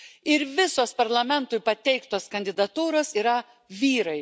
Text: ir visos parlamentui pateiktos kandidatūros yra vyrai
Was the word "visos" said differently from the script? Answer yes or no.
no